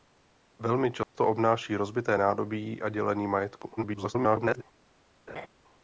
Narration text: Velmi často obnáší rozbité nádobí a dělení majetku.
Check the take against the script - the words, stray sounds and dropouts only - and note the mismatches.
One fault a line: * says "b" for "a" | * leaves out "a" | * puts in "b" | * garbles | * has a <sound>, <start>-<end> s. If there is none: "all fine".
* has a dropout, 1.0-1.1 s
* garbles
* has a laugh, 5.3-5.5 s